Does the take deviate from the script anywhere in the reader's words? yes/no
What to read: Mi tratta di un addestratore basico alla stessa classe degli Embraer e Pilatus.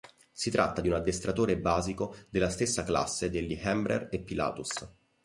yes